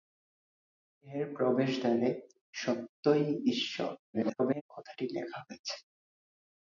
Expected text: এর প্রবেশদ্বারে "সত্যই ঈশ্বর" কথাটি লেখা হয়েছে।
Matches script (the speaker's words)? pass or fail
fail